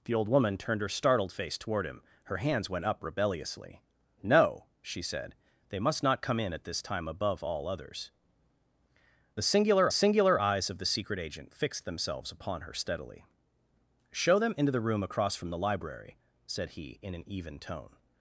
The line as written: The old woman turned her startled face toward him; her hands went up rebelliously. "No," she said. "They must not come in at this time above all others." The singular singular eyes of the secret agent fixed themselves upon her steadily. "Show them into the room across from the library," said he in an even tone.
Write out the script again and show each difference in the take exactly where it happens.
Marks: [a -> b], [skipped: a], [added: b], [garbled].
The old woman turned her startled face toward him; her hands went up rebelliously. "No," she said. "They must not come in at this time above all others." The singular singular eyes of the secret agent fixed themselves upon her steadily. "Show them into the room across from the library," said he in an even tone.